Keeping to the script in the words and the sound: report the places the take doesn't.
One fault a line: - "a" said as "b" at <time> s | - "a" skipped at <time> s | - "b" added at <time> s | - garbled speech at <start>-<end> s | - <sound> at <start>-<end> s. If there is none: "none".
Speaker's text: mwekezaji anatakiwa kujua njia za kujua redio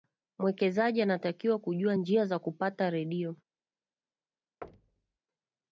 - "kujua" said as "kupata" at 2.4 s
- thud at 4.6-5.2 s